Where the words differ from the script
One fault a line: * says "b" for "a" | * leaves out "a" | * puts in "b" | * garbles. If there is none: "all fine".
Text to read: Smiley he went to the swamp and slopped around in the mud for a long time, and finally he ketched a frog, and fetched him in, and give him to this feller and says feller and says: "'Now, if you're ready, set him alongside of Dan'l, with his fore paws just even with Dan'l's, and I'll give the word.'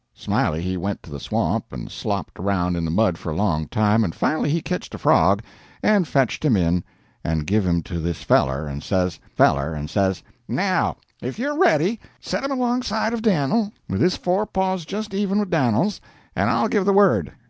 all fine